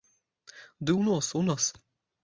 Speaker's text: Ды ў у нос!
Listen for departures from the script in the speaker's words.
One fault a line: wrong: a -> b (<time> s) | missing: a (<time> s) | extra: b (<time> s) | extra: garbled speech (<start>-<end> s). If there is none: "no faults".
extra: нос (1.1 s)